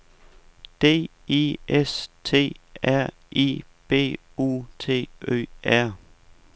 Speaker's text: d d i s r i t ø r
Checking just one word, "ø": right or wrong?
right